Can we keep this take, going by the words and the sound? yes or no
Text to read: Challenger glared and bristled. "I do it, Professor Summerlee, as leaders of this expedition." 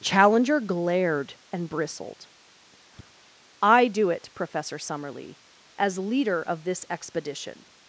no